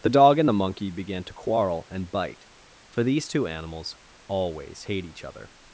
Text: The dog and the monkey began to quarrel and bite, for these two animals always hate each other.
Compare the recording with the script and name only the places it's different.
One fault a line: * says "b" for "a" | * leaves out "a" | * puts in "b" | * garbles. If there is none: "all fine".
all fine